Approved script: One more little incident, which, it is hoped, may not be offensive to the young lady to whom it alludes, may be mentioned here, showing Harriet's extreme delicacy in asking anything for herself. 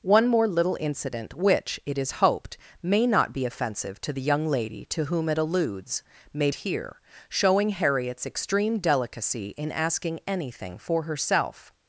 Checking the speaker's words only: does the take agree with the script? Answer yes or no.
no